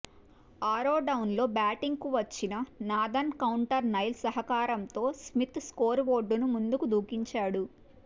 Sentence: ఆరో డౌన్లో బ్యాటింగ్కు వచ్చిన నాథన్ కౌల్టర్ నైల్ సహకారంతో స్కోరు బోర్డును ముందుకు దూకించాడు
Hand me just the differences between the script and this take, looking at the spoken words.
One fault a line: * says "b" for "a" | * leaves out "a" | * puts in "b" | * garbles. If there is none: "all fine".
* puts in "స్మిత్"